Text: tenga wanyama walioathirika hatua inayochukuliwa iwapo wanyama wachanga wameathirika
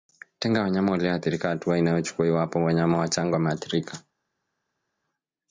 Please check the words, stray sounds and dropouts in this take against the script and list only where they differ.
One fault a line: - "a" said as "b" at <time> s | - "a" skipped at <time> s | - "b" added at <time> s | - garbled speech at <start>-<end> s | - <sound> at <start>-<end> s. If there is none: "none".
none